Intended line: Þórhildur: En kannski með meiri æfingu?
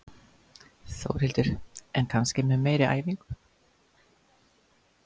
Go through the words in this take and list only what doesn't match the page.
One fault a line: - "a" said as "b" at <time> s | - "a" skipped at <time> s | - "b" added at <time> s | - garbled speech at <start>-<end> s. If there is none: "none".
none